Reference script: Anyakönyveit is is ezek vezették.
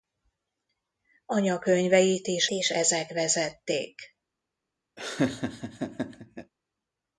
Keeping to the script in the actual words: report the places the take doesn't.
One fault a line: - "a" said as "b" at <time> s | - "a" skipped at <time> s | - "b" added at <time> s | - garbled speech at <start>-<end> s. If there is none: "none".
none